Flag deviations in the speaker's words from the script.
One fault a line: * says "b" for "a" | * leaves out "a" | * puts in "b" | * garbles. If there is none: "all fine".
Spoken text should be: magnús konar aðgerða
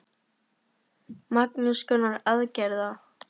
all fine